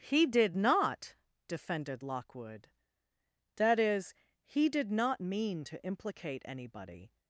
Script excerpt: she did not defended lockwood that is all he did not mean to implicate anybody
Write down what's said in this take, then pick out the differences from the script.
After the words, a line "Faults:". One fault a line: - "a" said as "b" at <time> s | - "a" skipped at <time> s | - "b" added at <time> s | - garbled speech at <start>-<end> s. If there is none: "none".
he did not defended lockwood that is he did not mean to implicate anybody
Faults:
- "she" said as "he" at 0.0 s
- "all" skipped at 4.1 s